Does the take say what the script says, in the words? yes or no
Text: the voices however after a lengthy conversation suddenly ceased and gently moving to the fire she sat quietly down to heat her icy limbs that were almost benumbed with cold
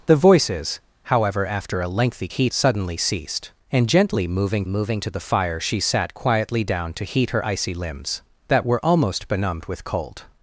no